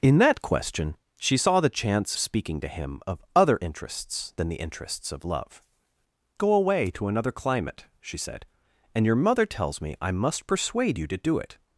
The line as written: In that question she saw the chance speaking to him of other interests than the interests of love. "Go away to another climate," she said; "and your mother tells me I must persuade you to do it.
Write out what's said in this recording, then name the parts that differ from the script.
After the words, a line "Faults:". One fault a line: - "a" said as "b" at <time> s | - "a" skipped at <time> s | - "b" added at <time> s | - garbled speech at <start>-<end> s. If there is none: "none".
In that question she saw the chance speaking to him of other interests than the interests of love. "Go away to another climate," she said; "and your mother tells me I must persuade you to do it.
Faults:
none